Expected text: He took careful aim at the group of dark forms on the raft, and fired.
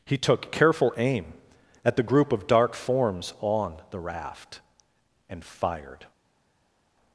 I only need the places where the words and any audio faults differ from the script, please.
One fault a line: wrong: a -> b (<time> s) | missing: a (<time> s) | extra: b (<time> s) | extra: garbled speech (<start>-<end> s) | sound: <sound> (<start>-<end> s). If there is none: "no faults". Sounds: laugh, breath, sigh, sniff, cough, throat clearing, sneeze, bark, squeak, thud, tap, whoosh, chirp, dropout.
no faults